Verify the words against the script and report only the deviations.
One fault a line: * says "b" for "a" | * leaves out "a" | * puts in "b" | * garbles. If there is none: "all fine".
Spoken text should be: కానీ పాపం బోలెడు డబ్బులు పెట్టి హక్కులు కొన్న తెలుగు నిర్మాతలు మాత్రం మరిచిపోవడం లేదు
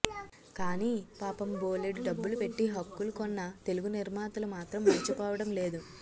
all fine